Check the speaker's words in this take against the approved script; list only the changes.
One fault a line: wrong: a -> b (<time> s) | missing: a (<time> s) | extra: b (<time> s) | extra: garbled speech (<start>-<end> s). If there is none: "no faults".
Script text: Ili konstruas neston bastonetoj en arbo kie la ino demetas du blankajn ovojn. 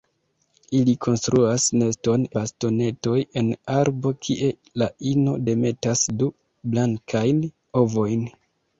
no faults